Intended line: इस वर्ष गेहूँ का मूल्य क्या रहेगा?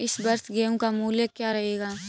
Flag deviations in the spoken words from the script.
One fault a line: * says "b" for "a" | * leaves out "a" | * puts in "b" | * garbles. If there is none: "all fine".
all fine